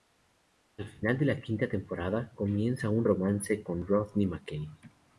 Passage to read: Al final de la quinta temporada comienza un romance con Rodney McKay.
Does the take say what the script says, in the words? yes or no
yes